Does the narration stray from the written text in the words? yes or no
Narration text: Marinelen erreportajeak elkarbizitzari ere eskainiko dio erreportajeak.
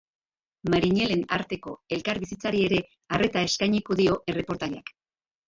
yes